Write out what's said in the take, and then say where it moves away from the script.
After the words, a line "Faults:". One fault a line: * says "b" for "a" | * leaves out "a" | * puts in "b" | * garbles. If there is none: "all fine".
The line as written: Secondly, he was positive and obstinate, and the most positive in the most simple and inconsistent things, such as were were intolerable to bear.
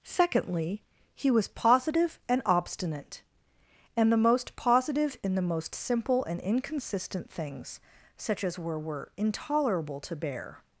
Secondly, he was positive and obstinate, and the most positive in the most simple and inconsistent things, such as were were intolerable to bear.
Faults:
all fine